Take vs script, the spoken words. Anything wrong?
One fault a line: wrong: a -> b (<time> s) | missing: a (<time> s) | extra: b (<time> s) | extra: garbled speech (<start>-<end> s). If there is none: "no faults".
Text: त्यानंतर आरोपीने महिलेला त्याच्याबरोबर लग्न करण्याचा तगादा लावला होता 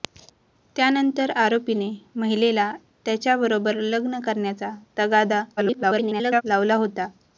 extra: garbled speech (5.6-6.4 s)